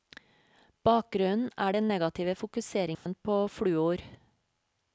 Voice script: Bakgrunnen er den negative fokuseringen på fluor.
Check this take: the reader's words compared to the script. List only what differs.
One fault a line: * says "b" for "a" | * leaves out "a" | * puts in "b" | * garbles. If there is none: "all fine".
all fine